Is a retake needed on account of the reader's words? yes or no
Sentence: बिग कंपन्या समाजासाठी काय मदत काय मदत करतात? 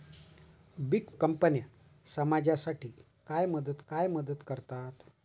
no